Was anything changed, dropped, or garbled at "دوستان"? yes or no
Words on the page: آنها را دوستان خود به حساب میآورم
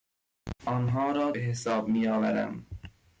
yes